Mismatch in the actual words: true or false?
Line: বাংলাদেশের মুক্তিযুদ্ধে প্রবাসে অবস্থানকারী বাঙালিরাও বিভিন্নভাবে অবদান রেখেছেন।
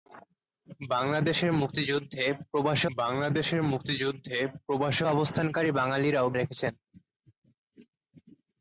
true